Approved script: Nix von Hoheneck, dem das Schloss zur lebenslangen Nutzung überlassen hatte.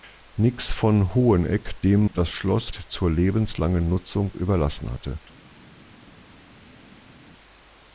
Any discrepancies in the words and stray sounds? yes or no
no